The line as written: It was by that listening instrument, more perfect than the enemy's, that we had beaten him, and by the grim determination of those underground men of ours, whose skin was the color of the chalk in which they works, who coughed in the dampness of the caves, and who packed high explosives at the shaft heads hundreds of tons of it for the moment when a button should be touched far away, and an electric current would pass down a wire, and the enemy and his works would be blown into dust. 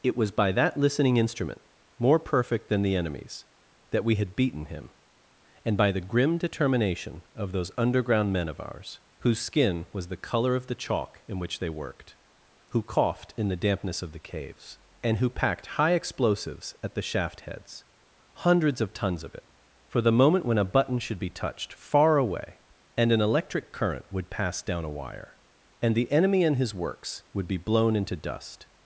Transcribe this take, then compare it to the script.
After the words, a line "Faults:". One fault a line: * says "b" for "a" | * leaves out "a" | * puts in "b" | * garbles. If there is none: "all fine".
It was by that listening instrument, more perfect than the enemy's, that we had beaten him, and by the grim determination of those underground men of ours, whose skin was the color of the chalk in which they worked, who coughed in the dampness of the caves, and who packed high explosives at the shaft heads hundreds of tons of it for the moment when a button should be touched far away, and an electric current would pass down a wire, and the enemy and his works would be blown into dust.
Faults:
* says "worked" for "works"